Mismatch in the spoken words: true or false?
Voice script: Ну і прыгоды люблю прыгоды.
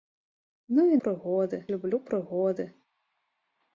false